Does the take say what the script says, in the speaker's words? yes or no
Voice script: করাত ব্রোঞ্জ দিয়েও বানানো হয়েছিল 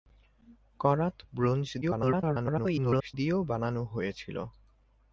no